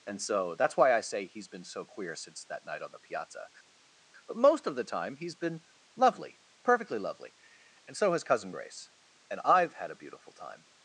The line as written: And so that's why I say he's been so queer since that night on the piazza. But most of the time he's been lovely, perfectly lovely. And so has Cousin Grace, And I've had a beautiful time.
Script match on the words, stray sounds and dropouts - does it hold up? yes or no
yes